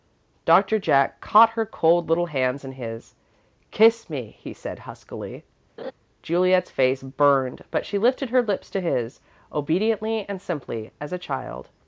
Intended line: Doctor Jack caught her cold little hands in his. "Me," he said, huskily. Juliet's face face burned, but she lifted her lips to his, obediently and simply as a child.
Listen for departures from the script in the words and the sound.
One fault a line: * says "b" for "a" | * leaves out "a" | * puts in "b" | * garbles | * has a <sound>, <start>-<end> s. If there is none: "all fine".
* puts in "Kiss"
* has a laugh, 5.8-5.9 s
* leaves out "face"